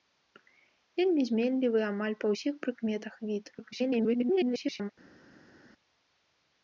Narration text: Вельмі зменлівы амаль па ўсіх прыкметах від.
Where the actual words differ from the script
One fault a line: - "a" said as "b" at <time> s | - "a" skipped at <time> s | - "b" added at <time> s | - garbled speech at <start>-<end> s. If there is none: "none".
- garbled speech at 3.5-4.9 s